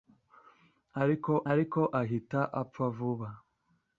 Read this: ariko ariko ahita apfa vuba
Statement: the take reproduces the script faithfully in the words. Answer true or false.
true